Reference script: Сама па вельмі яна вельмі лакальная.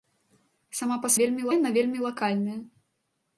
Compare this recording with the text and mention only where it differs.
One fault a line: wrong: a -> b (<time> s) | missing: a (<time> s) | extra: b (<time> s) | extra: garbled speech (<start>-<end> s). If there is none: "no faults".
no faults